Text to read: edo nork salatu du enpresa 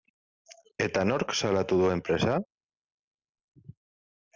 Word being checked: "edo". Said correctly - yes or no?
no